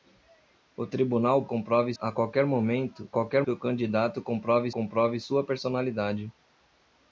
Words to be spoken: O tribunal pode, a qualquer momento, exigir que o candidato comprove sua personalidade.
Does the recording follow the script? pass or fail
fail